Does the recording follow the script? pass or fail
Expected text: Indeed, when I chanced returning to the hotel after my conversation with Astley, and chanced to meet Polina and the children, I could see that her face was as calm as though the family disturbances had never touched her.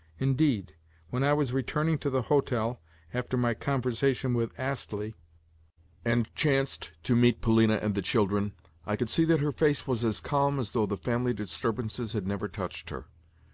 fail